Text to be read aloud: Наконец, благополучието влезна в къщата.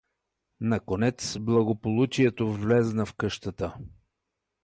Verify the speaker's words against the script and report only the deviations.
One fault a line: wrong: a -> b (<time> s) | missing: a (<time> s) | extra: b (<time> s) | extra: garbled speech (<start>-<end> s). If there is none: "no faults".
no faults